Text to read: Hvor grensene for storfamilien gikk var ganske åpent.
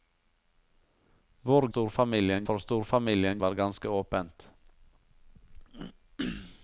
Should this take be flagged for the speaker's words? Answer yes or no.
yes